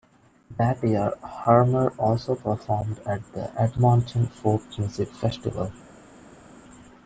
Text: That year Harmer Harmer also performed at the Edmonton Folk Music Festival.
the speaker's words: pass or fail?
fail